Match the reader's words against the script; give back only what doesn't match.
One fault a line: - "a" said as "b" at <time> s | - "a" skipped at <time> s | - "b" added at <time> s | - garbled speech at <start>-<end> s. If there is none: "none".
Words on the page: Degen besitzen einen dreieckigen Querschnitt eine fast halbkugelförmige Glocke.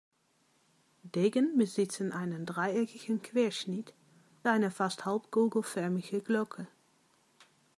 none